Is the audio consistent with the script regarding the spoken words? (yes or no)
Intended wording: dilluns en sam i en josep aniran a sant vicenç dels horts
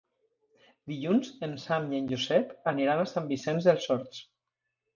yes